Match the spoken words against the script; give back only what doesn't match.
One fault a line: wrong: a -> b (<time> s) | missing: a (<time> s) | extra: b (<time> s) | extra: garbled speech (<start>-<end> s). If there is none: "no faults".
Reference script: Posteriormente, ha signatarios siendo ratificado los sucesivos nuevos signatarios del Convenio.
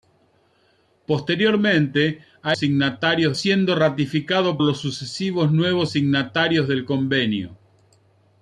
no faults